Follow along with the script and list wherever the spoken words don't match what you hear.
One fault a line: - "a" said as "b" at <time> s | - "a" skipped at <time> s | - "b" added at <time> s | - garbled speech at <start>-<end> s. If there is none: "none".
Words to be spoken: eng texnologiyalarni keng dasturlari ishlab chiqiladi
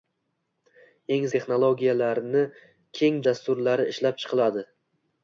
none